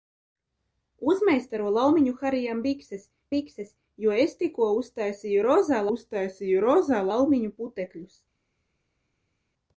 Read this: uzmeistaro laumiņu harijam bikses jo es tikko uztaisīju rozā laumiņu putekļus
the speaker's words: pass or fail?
fail